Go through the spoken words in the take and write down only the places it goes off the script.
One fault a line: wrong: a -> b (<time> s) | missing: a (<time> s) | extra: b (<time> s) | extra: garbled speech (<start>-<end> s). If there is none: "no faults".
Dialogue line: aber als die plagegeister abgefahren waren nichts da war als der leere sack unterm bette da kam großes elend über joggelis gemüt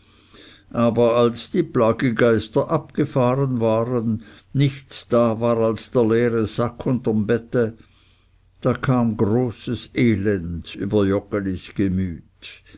no faults